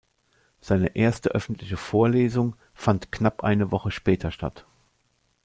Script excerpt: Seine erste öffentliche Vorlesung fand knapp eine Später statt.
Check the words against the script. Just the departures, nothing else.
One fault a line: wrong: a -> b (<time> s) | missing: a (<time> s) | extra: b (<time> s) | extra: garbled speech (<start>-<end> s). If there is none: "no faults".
extra: Woche (3.7 s)